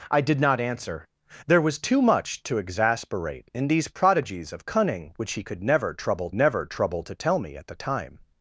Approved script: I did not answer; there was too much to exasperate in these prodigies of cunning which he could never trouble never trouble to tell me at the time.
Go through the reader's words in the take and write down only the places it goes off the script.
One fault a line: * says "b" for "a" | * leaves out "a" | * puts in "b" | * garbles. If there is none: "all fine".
all fine